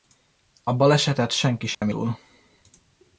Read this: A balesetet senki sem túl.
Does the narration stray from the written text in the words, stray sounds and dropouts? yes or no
yes